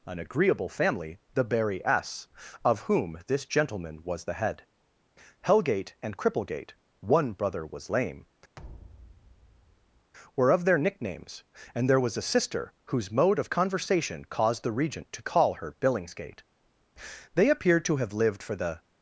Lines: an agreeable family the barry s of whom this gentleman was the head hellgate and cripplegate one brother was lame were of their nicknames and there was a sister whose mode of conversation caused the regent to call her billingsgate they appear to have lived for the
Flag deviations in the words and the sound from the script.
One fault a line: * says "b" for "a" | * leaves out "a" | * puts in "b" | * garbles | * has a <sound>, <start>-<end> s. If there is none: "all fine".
* has a thud, 8.6-10.1 s